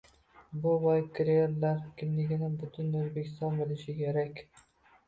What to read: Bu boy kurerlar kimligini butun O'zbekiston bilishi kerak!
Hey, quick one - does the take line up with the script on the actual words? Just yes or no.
yes